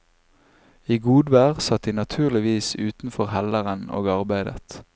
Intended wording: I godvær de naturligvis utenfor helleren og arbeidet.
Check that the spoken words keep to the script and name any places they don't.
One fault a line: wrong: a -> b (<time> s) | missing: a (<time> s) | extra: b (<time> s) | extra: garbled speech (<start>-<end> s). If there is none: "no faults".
extra: satt (1.6 s)